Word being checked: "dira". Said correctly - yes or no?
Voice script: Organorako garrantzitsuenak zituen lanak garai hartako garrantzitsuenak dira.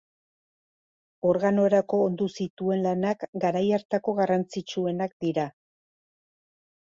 yes